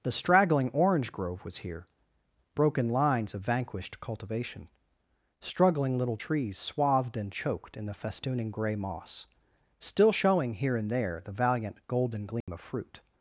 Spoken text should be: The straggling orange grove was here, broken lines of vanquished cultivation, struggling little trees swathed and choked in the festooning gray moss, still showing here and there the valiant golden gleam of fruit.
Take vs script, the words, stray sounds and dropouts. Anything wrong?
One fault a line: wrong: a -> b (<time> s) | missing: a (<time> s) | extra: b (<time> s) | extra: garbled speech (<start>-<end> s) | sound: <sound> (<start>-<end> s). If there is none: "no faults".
sound: dropout (12.4-12.5 s)